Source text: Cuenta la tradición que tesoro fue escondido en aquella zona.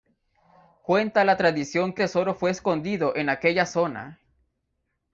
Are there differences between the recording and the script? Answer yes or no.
no